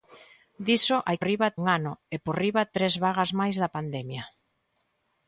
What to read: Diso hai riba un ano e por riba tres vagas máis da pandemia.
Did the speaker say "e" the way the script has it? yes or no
yes